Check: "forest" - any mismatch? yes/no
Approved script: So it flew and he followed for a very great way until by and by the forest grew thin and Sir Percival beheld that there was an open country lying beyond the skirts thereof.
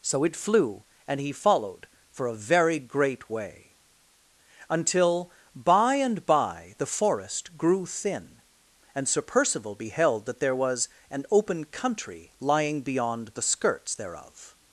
no